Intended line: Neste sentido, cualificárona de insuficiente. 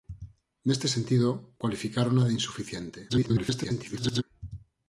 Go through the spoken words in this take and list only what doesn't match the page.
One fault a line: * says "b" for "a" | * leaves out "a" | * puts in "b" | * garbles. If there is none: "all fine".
* garbles